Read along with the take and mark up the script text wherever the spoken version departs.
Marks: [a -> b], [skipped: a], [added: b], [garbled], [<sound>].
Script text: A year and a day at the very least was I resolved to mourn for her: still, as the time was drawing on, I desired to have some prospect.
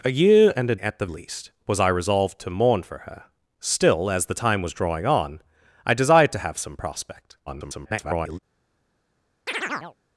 A year and a [skipped: day] at the [skipped: very] least was I resolved to mourn for her: still, as the time was drawing on, I desired to have some prospect. [garbled] [chirp]